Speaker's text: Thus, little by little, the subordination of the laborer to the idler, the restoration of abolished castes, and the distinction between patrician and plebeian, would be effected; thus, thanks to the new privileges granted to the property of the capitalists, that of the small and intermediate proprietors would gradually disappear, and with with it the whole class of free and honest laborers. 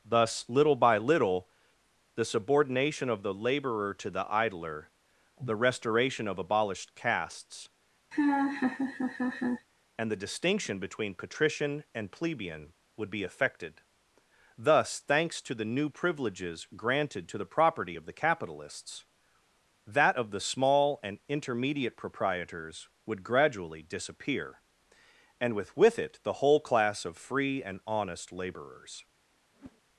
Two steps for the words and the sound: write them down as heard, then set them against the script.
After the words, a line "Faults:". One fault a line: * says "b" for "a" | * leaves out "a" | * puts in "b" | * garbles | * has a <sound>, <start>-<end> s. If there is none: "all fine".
Thus, little by little, the subordination of the laborer to the idler, the restoration of abolished castes, and the distinction between patrician and plebeian, would be effected; thus, thanks to the new privileges granted to the property of the capitalists, that of the small and intermediate proprietors would gradually disappear, and with with it the whole class of free and honest laborers.
Faults:
* has a laugh, 8.1-9.7 s
* has a whoosh, 29.5-29.8 s